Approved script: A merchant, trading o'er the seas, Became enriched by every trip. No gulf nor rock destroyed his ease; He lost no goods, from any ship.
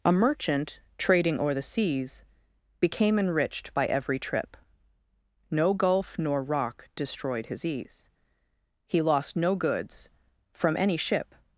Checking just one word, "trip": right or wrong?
right